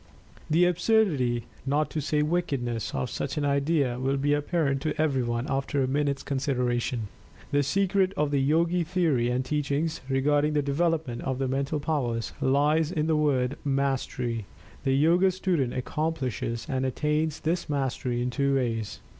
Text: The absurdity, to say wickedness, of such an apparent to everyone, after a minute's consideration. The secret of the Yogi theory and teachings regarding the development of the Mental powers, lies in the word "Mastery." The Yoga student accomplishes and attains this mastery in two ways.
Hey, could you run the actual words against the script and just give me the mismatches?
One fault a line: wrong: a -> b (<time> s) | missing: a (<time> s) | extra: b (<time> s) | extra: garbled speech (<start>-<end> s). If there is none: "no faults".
extra: not (1.6 s)
extra: idea will be (3.5 s)